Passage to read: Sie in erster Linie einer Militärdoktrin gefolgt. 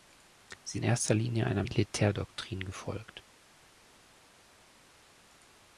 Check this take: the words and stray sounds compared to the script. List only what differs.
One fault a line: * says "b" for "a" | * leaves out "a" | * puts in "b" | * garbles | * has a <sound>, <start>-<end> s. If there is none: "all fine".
all fine